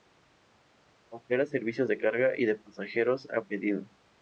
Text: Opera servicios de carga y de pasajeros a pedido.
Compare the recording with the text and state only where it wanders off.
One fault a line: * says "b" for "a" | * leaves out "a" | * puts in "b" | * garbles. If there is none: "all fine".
all fine